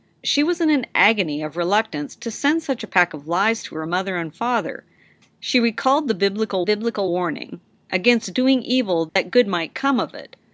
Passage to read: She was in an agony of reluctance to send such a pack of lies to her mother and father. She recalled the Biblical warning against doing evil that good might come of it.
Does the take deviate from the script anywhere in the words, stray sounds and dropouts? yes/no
yes